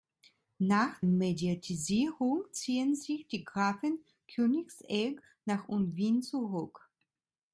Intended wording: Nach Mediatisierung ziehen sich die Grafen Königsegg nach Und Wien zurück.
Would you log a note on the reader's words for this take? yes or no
no